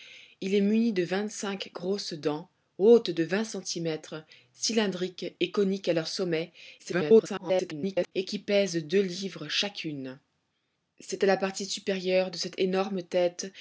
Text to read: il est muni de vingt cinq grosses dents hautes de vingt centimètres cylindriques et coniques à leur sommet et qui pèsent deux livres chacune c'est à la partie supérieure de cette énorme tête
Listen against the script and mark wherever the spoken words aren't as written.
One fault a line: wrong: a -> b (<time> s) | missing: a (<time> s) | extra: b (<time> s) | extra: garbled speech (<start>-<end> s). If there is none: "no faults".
extra: garbled speech (6.8-8.1 s)